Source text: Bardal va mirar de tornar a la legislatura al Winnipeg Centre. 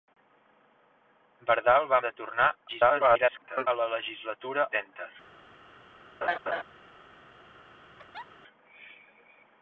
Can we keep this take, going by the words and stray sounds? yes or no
no